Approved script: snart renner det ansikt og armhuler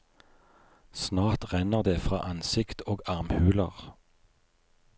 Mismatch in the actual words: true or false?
true